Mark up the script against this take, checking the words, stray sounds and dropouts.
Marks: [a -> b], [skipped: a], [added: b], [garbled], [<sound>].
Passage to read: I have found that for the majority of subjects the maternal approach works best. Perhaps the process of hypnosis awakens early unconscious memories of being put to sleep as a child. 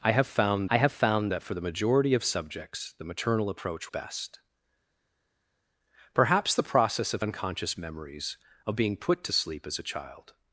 I have found [added: I have found] that for the majority of subjects the maternal approach [skipped: works] best. Perhaps the process of [skipped: hypnosis awakens early] unconscious memories of being put to sleep as a child.